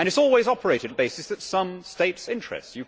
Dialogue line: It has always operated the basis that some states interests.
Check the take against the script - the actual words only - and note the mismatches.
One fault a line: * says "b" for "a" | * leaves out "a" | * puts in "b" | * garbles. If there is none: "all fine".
all fine